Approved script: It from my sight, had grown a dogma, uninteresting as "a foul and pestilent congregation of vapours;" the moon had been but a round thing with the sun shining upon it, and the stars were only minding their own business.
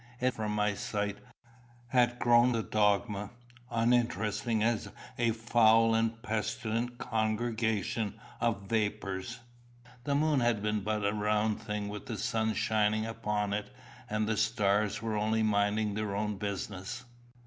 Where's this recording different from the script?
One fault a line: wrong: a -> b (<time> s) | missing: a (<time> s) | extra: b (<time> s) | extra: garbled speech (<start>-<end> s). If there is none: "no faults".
no faults